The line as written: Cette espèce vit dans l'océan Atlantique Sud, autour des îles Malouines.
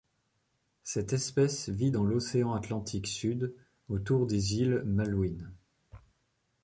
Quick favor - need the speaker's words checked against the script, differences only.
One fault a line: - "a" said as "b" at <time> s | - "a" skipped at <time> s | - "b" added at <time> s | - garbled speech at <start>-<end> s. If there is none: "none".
none